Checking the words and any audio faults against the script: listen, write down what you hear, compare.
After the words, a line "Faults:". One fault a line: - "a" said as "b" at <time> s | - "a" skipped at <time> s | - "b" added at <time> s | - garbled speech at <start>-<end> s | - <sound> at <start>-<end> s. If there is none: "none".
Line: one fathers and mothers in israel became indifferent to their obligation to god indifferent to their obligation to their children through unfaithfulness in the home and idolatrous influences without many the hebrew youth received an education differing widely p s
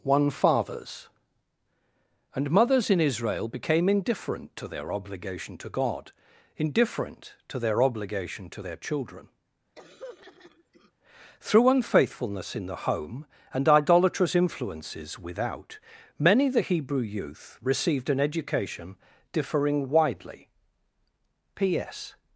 one fathers and mothers in israel became indifferent to their obligation to god indifferent to their obligation to their children through unfaithfulness in the home and idolatrous influences without many the hebrew youth received an education differing widely p s
Faults:
- throat clearing at 9.8-10.9 s